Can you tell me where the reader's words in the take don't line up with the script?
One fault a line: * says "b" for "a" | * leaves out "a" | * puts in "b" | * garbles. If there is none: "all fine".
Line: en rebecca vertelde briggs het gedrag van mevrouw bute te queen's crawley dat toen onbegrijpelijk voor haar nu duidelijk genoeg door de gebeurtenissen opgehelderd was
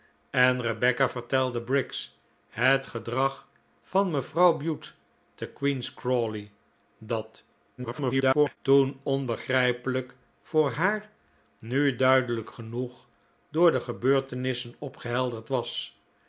* garbles